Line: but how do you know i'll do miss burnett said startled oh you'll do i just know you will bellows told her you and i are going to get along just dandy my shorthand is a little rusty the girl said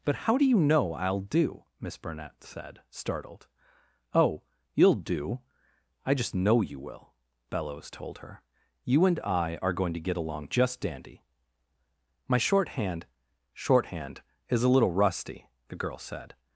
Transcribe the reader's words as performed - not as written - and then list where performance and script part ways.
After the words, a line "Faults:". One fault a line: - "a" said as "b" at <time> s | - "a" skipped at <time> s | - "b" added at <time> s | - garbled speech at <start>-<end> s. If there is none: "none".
but how do you know i'll do miss burnett said startled oh you'll do i just know you will bellows told her you and i are going to get along just dandy my shorthand shorthand is a little rusty the girl said
Faults:
- "shorthand" added at 13.5 s